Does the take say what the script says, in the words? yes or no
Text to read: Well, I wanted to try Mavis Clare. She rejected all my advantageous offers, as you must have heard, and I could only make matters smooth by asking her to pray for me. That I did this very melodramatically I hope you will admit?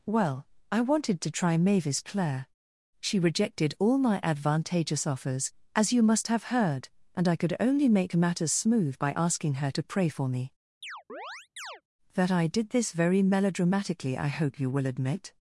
yes